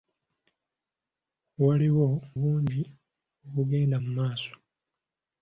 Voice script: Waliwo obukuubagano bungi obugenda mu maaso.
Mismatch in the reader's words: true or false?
true